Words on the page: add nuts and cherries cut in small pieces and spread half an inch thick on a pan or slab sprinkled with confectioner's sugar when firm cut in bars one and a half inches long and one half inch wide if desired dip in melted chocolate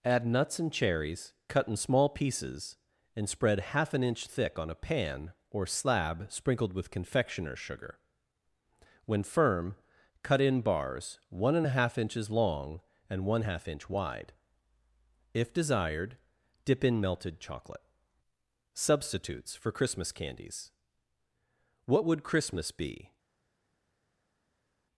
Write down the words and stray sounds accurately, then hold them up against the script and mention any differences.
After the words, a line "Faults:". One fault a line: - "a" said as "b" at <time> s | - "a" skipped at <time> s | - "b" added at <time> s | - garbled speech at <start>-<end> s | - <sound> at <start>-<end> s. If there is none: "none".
add nuts and cherries cut in small pieces and spread half an inch thick on a pan or slab sprinkled with confectioner's sugar when firm cut in bars one and a half inches long and one half inch wide if desired dip in melted chocolate substitutes for christmas candies what would christmas be
Faults:
- "substitutes for christmas candies what would christmas be" added at 18.7 s